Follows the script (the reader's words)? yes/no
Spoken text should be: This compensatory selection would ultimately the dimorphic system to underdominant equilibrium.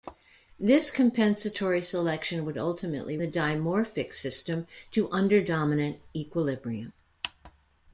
yes